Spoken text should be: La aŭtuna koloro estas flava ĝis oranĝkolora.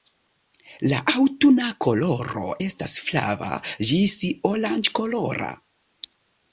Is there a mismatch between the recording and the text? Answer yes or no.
no